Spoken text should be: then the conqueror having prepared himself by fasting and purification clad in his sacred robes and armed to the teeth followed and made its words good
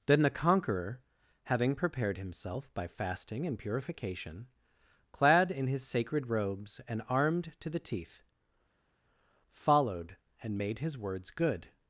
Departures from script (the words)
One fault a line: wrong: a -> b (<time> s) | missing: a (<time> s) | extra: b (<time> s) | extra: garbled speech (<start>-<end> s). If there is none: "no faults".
wrong: its -> his (10.8 s)